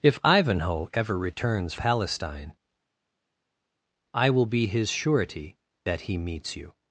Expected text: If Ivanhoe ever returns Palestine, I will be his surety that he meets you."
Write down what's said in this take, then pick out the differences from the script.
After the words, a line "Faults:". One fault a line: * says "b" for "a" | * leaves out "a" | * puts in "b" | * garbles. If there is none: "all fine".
If Ivanhoe ever returns Palestine, I will be his surety that he meets you."
Faults:
all fine